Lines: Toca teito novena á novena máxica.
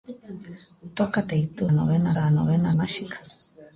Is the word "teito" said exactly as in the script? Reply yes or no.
yes